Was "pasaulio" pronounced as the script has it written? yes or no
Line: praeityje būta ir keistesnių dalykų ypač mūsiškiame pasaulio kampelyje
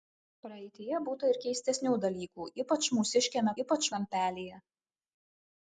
no